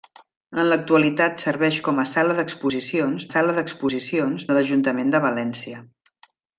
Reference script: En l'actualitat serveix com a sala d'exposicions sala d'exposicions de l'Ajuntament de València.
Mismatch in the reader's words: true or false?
false